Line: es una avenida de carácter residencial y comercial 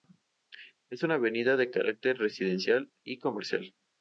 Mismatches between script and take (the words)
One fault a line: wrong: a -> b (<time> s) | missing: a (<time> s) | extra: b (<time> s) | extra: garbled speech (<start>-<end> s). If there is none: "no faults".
no faults